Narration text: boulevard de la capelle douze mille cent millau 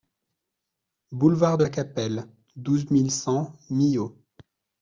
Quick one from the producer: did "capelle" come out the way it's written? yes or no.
yes